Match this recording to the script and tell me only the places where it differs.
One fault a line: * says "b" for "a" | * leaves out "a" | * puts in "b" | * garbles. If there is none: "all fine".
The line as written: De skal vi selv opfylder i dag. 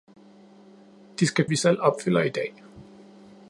all fine